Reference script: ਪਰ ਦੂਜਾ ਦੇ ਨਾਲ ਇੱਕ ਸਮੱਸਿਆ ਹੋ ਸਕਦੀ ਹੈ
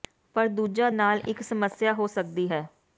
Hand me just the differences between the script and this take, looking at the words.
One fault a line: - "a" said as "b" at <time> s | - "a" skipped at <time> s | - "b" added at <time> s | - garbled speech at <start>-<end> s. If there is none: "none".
- "ਦੇ" skipped at 0.9 s